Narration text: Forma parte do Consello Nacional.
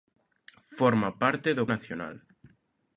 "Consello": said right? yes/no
no